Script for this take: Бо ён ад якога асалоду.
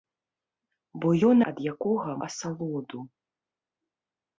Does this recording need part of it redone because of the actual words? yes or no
no